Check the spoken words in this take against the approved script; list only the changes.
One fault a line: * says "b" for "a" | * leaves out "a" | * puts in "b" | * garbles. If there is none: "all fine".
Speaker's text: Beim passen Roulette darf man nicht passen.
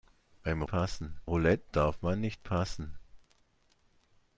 all fine